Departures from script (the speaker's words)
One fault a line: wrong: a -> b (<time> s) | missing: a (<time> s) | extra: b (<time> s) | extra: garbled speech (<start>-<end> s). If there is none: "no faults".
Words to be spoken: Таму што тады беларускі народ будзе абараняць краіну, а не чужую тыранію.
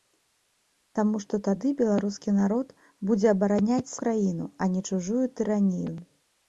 no faults